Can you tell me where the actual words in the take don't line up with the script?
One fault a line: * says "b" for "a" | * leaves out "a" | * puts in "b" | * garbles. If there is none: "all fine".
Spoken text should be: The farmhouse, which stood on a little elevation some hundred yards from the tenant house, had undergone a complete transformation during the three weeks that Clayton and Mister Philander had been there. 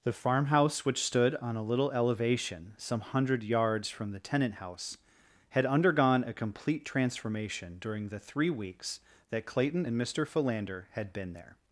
all fine